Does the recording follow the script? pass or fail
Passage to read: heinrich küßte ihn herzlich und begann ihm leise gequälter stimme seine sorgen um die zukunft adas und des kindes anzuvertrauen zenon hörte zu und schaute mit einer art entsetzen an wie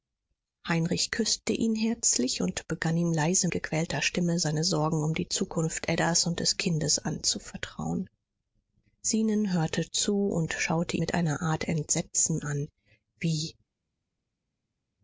pass